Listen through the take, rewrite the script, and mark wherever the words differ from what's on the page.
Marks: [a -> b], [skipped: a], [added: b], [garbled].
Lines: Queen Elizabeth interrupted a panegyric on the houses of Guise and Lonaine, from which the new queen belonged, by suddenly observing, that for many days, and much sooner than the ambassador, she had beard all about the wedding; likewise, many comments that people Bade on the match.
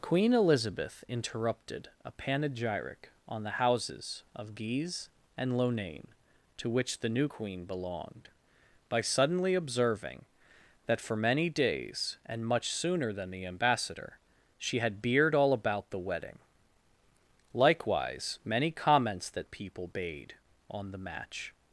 Queen Elizabeth interrupted a panegyric on the houses of Guise and Lonaine, [from -> to] which the new queen belonged, by suddenly observing, that for many days, and much sooner than the ambassador, she had beard all about the wedding; likewise, many comments that people Bade on the match.